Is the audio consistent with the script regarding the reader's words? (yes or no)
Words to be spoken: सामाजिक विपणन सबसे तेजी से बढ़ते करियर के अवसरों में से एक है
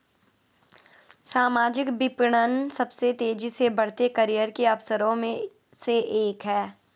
yes